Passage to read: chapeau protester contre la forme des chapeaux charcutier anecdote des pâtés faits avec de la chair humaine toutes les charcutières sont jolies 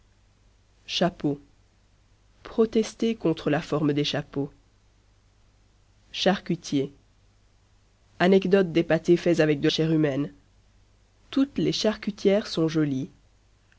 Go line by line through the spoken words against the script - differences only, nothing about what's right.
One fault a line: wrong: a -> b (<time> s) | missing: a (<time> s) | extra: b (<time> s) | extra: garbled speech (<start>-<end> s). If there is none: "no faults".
missing: la (9.7 s)